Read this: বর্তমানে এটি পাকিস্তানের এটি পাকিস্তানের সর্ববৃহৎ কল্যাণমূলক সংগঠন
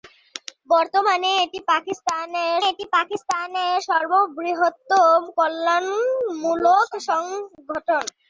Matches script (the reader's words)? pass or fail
pass